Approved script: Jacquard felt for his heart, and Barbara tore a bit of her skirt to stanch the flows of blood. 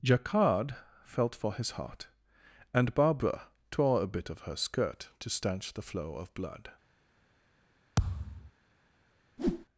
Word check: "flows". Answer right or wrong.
wrong